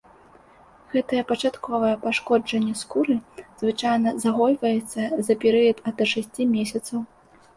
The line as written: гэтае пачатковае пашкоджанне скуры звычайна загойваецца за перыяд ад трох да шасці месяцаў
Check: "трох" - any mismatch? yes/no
yes